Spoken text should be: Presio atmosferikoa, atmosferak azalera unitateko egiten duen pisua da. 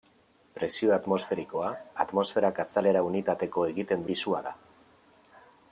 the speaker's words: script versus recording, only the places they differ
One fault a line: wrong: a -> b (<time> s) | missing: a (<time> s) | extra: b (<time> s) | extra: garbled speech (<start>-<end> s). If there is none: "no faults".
missing: duen (4.1 s)